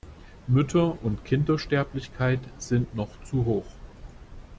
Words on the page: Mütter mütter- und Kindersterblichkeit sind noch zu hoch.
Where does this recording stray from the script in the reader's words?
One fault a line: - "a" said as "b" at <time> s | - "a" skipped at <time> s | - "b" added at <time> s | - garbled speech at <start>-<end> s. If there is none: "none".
- "mütter" skipped at 1.0 s